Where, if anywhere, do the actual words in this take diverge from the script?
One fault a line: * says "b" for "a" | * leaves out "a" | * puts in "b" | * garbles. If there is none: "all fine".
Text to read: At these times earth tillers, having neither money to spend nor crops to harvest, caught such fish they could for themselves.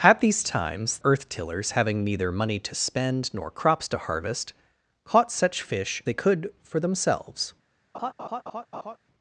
all fine